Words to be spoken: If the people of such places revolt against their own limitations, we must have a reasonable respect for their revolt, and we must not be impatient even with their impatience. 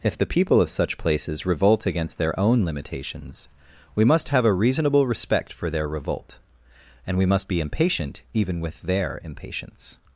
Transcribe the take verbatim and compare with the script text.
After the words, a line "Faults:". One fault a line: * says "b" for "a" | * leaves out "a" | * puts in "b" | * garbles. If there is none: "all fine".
If the people of such places revolt against their own limitations, we must have a reasonable respect for their revolt, and we must be impatient even with their impatience.
Faults:
* leaves out "not"